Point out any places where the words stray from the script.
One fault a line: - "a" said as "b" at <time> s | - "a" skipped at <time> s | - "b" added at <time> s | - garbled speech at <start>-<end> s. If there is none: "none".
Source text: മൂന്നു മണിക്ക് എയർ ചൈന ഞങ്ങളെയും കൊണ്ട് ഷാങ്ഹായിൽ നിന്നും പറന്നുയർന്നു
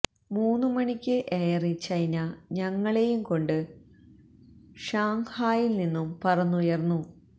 none